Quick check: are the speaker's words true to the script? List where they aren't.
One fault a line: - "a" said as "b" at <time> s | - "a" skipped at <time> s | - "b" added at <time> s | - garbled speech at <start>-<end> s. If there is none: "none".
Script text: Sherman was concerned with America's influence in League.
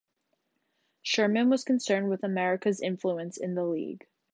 - "the" added at 3.5 s